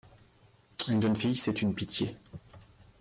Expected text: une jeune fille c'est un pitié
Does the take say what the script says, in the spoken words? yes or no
no